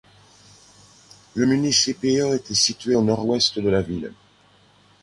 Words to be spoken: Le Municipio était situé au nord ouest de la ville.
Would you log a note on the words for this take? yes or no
no